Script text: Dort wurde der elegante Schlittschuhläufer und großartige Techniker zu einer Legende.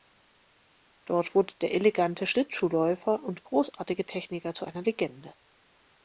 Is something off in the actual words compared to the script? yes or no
no